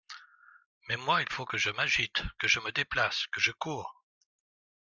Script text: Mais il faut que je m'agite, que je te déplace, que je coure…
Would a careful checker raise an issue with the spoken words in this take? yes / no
yes